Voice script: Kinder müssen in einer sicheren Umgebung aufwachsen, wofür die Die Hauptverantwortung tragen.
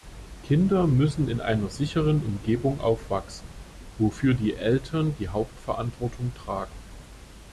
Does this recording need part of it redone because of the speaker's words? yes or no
yes